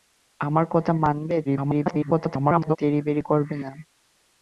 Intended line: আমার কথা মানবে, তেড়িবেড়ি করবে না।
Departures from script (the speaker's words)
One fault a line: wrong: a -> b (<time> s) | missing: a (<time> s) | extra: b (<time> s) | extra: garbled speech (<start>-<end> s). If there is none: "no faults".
extra: garbled speech (1.4-2.8 s)